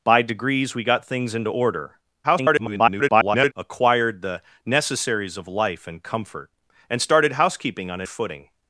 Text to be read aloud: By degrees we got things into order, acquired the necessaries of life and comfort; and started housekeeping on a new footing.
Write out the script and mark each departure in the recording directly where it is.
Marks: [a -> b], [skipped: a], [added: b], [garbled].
By degrees we got things into order, [garbled] acquired the necessaries of life and comfort; and started housekeeping on a [skipped: new] footing.